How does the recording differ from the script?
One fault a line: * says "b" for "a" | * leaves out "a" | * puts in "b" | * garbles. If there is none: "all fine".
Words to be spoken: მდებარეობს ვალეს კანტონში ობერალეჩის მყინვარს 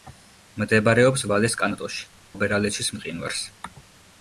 all fine